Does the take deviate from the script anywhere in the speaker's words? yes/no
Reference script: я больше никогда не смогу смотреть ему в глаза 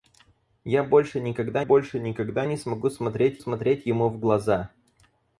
yes